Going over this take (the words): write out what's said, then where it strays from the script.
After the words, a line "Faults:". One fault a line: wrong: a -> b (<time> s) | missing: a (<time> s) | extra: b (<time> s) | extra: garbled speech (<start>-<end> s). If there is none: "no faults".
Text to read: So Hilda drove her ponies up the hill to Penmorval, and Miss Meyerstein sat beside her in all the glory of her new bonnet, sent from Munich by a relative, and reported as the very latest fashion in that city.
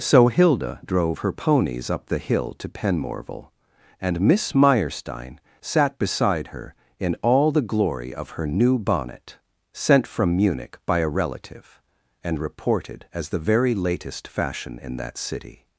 So Hilda drove her ponies up the hill to Penmorval, and Miss Meyerstein sat beside her in all the glory of her new bonnet, sent from Munich by a relative, and reported as the very latest fashion in that city.
Faults:
no faults